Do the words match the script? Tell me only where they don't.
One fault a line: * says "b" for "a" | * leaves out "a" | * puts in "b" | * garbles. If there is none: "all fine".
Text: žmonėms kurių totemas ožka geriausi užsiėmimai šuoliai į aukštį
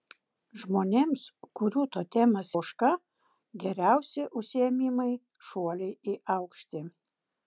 all fine